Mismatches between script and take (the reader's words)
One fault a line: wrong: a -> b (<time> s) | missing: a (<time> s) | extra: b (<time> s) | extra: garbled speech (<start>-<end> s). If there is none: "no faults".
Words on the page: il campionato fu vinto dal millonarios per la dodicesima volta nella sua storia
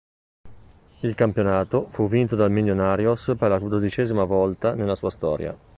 no faults